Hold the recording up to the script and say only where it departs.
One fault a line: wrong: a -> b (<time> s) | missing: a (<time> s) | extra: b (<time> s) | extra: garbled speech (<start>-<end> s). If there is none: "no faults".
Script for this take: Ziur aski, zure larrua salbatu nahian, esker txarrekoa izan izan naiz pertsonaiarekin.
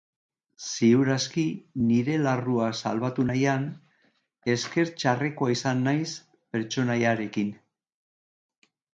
wrong: zure -> nire (1.9 s)
missing: izan (5.8 s)